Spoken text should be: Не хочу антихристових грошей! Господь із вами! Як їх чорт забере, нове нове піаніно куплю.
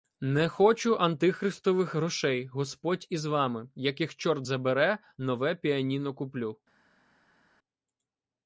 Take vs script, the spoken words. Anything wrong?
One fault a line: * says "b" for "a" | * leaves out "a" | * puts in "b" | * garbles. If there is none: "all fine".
* leaves out "нове"